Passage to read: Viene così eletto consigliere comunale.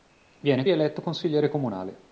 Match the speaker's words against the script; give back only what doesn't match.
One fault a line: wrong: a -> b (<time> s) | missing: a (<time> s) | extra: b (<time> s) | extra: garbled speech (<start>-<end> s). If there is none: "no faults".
missing: così (0.6 s)